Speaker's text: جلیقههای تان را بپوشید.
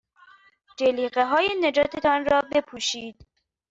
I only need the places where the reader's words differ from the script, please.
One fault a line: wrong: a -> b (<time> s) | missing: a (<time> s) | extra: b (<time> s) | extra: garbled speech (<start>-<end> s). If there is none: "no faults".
extra: نجات (1.6 s)